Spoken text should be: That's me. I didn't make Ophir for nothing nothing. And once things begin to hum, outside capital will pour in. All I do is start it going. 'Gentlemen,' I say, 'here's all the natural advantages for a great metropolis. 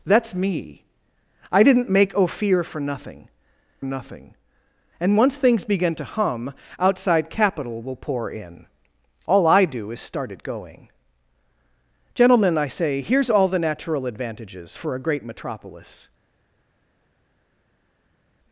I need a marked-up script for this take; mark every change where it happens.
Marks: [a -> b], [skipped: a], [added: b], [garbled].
That's me. I didn't make Ophir for nothing nothing. And once things begin to hum, outside capital will pour in. All I do is start it going. 'Gentlemen,' I say, 'here's all the natural advantages for a great metropolis.